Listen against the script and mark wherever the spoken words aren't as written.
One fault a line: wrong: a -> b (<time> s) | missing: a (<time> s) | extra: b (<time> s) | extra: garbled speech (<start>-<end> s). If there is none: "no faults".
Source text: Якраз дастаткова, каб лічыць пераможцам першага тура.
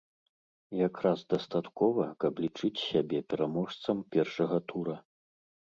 extra: сябе (2.9 s)